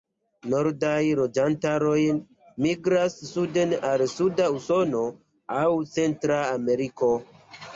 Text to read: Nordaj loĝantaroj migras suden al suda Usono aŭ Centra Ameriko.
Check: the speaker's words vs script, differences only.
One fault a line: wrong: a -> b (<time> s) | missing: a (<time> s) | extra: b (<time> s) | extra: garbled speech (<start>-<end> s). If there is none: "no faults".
no faults